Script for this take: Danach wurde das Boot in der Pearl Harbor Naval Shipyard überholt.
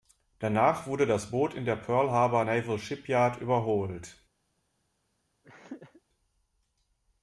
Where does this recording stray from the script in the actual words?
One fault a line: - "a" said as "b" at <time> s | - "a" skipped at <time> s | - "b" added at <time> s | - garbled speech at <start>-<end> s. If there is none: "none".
none